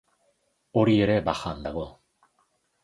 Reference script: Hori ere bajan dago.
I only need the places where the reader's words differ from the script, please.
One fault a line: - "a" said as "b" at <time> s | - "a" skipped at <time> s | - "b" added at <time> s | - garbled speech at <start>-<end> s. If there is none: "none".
none